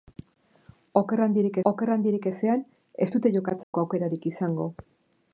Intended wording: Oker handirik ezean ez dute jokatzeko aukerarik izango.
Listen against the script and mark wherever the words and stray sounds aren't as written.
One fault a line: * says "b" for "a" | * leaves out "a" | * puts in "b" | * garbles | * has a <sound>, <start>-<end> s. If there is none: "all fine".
* puts in "oker handirik"
* has a dropout, 3.6-3.7 s